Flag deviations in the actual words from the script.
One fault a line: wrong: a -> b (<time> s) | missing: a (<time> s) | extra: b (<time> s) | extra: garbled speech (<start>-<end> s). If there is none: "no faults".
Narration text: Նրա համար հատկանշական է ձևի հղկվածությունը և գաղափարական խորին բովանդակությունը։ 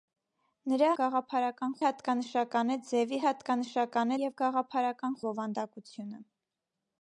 wrong: համար -> գաղափարական (1.0 s)
wrong: հղկվածությունը -> հատկանշական (3.3 s)
missing: խորին (5.2 s)